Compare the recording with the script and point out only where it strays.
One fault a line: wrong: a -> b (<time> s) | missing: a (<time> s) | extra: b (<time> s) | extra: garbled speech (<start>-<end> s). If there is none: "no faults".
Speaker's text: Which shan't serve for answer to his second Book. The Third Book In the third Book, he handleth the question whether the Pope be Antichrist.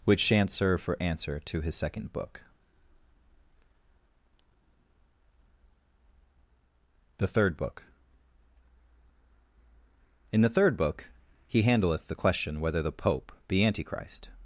no faults